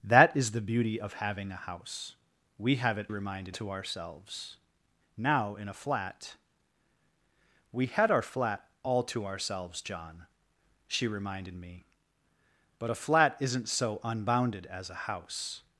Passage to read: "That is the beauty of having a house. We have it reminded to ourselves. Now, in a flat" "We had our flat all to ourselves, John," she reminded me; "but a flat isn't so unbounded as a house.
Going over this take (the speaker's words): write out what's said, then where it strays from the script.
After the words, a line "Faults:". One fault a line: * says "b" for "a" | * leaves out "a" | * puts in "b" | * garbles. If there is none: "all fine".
"That is the beauty of having a house. We have it reminded to ourselves. Now, in a flat" "We had our flat all to ourselves, John," she reminded me; "but a flat isn't so unbounded as a house.
Faults:
all fine